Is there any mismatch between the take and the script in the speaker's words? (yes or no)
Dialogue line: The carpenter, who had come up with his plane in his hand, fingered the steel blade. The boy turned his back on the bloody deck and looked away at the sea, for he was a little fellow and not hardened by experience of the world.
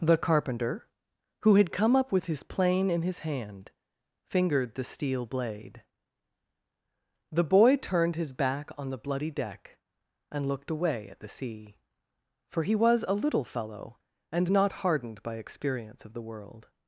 no